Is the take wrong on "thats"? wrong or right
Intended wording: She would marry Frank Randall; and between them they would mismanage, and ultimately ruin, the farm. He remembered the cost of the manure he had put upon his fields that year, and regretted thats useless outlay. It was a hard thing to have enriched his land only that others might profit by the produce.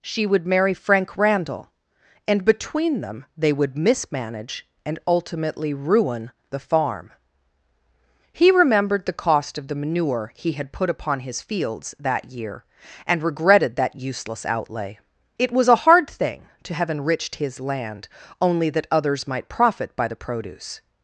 wrong